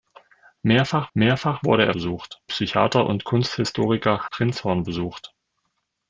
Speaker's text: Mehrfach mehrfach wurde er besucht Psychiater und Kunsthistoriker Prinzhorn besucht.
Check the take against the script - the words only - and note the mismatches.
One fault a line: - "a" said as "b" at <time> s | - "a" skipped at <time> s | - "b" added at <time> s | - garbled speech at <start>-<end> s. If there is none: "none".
none